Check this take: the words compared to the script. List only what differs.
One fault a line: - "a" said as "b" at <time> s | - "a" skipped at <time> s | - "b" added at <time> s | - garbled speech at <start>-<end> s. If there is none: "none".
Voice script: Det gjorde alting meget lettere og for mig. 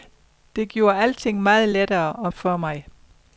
none